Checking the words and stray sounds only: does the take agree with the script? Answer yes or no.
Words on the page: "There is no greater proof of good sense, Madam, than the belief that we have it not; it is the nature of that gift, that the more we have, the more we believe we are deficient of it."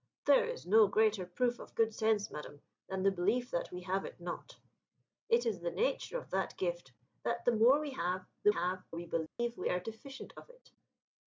no